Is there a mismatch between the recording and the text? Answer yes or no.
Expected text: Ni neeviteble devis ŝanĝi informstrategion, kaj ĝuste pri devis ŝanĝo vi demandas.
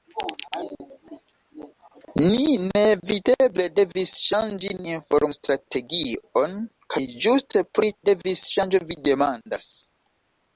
no